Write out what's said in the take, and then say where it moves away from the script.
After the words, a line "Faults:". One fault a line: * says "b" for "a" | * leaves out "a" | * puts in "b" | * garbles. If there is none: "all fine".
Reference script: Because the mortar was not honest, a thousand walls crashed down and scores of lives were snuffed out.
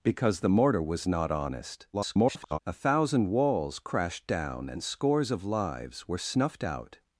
Because the mortar was not honest, [garbled] a thousand walls crashed down and scores of lives were snuffed out.
Faults:
* garbles